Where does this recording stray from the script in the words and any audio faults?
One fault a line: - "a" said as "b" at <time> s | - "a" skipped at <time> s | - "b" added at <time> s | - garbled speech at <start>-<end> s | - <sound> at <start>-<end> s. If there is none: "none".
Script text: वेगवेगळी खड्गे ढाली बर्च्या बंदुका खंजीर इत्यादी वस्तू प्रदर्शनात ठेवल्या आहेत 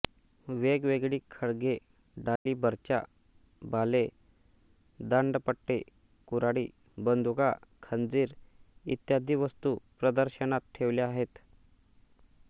- dropout at 2.4-2.5 s
- "भाले दांडपट्टे कुऱ्हाडी" added at 3.6 s